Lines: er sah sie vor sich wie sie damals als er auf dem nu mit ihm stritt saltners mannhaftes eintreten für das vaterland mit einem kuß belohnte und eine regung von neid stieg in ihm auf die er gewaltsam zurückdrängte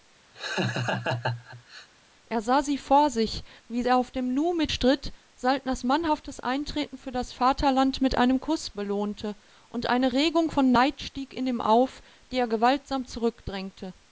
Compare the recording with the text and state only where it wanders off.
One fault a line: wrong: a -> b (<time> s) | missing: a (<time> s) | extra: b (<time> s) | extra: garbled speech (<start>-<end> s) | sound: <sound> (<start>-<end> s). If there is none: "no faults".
sound: laugh (0.3-1.9 s)
missing: sie damals als (3.8 s)
missing: ihm (4.7 s)